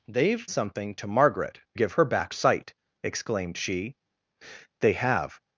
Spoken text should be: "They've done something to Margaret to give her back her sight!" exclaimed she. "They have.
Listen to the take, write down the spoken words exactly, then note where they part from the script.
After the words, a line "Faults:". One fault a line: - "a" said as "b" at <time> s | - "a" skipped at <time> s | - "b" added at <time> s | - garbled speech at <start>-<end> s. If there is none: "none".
"They've something to Margaret give her back sight!" exclaimed she. "They have.
Faults:
- "done" skipped at 0.5 s
- "to" skipped at 1.6 s
- "her" skipped at 2.3 s